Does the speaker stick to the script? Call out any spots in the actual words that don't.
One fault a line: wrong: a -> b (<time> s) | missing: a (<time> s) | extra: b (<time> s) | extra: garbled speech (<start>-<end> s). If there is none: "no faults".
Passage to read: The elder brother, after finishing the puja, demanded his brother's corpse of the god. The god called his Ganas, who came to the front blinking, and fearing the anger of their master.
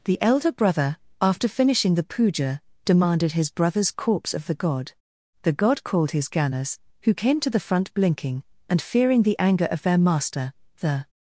extra: The (10.8 s)